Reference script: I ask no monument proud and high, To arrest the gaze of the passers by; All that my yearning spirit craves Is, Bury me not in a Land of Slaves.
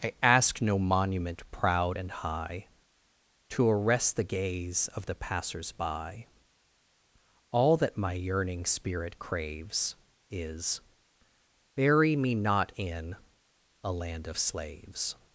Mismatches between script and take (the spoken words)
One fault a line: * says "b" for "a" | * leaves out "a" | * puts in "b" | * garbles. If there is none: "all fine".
all fine